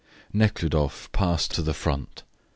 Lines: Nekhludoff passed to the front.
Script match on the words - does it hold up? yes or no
yes